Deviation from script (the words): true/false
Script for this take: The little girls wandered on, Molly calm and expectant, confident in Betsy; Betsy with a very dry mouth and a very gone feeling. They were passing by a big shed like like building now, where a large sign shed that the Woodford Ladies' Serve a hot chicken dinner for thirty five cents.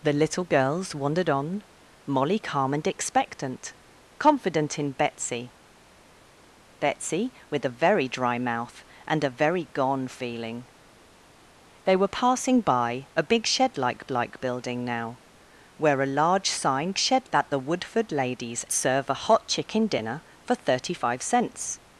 false